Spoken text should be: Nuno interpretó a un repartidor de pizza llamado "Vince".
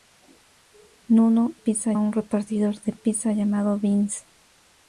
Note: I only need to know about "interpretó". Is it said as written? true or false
false